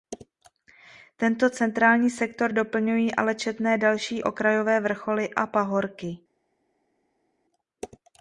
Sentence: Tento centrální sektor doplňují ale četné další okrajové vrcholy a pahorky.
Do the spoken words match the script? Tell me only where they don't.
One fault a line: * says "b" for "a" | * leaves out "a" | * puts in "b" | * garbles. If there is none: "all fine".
all fine